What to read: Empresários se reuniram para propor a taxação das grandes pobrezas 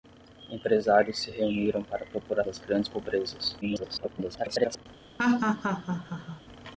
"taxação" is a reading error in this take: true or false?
true